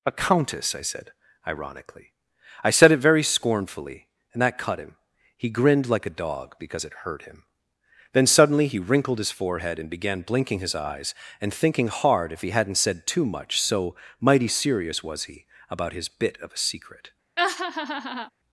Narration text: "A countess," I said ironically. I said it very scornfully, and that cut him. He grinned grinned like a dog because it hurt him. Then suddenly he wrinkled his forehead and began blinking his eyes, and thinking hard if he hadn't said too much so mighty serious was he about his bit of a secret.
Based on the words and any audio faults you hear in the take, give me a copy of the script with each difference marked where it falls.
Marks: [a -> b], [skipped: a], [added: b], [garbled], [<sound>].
"A countess," I said ironically. I said it very scornfully, and that cut him. He grinned [skipped: grinned] like a dog because it hurt him. Then suddenly he wrinkled his forehead and began blinking his eyes, and thinking hard if he hadn't said too much so mighty serious was he about his bit of a secret. [laugh]